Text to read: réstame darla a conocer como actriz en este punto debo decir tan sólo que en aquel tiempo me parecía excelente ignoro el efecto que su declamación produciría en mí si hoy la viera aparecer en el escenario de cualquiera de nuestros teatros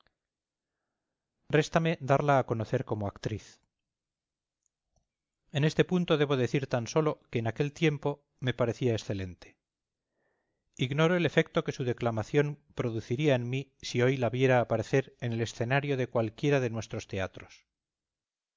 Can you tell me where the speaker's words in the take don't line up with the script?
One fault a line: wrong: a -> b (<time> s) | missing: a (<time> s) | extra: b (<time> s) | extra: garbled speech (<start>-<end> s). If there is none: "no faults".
no faults